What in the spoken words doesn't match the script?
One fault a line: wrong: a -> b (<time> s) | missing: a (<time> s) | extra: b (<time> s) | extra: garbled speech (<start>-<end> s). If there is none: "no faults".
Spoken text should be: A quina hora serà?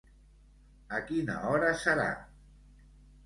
no faults